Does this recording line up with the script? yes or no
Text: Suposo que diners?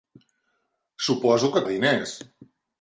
yes